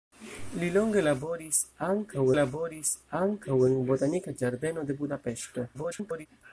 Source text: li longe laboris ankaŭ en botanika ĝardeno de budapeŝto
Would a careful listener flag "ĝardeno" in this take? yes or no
no